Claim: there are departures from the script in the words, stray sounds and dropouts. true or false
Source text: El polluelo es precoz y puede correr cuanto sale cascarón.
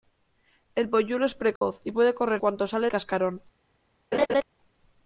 true